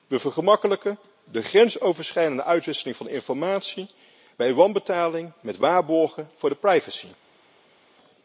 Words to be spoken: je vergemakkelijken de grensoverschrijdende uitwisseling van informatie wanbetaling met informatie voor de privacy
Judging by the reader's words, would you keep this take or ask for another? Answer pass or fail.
fail